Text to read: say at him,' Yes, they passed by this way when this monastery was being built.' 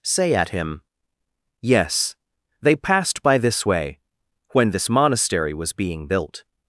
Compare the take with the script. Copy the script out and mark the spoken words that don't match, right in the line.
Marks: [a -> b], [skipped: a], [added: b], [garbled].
say at him,' Yes, they passed by this way when this monastery was being built.'